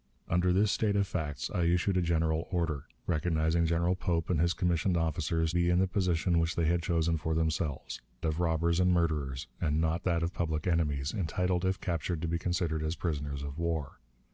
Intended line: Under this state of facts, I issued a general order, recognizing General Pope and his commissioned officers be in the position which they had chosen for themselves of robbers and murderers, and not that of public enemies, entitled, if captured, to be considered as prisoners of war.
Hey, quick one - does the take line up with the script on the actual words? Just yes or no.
yes